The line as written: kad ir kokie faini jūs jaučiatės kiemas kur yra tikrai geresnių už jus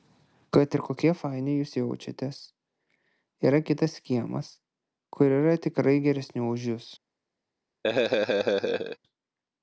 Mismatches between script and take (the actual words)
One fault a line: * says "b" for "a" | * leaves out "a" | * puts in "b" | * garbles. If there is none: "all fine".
* puts in "yra kitas"